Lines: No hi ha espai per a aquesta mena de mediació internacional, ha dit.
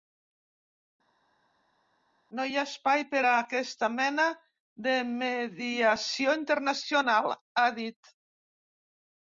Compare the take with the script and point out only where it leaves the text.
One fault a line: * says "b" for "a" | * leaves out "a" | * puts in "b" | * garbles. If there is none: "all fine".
all fine